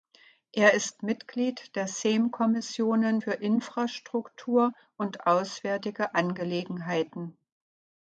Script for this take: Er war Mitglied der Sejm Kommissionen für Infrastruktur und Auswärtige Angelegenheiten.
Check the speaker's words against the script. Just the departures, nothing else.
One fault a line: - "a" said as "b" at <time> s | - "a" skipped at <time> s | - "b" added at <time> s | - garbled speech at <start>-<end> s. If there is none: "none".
- "war" said as "ist" at 0.7 s